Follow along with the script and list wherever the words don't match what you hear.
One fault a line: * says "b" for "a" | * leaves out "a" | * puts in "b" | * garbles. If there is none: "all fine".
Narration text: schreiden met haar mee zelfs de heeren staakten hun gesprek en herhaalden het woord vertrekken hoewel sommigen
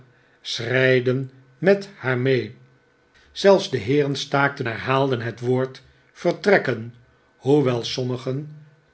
* leaves out "hun gesprek en"